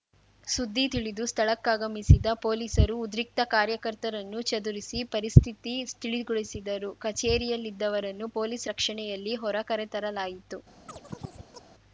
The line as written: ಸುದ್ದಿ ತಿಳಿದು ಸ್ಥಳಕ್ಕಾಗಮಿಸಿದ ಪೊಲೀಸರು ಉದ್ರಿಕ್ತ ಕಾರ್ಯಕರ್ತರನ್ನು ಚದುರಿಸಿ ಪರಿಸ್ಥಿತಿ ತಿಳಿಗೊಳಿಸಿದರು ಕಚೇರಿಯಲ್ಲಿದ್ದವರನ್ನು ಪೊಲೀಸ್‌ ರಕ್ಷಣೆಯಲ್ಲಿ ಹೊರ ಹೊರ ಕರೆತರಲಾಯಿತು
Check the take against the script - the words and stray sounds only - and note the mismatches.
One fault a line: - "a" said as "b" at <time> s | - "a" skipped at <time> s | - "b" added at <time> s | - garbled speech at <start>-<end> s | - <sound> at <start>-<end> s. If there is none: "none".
- "ಹೊರ" skipped at 9.6 s
- chirp at 10.9-11.7 s